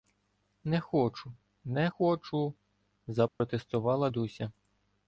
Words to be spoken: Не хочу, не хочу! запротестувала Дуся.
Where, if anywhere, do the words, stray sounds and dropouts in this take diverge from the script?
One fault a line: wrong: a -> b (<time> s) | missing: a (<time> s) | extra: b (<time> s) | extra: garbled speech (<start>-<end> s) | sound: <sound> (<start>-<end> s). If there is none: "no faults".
sound: dropout (3.3-3.4 s)